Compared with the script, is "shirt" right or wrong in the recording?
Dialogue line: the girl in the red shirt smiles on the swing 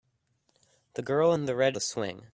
wrong